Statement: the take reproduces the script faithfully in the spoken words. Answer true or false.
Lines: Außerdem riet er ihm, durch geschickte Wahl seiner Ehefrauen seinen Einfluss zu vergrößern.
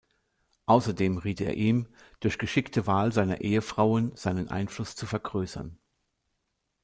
true